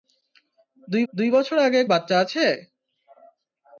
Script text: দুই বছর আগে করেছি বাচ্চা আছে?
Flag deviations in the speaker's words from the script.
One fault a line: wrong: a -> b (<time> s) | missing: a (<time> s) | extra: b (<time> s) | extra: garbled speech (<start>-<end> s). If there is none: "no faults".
extra: দুই (1.1 s)
missing: করেছি (1.8 s)